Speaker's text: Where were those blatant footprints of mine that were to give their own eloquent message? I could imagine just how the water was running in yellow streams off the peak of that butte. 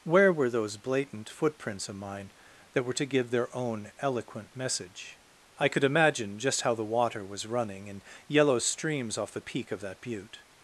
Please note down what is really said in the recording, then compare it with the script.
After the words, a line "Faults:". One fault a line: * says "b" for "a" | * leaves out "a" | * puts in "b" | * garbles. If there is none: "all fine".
Where were those blatant footprints of mine that were to give their own eloquent message? I could imagine just how the water was running in yellow streams off the peak of that butte.
Faults:
all fine